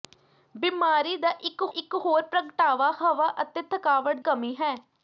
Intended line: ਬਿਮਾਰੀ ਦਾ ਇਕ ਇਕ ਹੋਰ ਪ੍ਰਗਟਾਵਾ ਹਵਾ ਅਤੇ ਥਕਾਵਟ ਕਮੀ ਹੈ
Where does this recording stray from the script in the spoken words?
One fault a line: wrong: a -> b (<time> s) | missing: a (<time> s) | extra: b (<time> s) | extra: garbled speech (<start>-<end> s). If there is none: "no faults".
no faults